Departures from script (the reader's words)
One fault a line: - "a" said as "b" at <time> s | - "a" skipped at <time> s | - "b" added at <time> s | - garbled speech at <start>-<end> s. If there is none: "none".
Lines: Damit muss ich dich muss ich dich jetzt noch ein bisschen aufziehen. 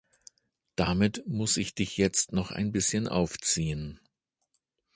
- "muss ich dich" skipped at 1.9 s